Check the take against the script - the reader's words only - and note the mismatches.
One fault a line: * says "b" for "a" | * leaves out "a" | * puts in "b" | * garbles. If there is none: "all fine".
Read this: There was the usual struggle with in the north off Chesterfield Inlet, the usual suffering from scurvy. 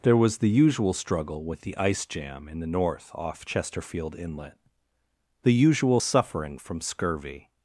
* puts in "the ice jam"